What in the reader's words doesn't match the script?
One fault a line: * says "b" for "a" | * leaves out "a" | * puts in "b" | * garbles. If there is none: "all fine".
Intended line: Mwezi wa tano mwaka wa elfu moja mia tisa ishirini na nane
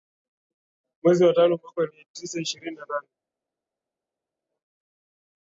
* leaves out "elfu moja"